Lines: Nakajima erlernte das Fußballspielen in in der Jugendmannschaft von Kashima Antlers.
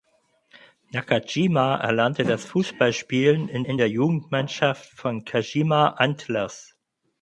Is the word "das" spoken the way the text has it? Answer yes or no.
yes